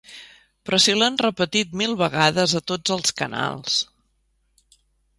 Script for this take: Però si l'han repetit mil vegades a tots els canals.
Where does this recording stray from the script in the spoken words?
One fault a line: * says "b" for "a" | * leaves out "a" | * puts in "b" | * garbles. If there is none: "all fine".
all fine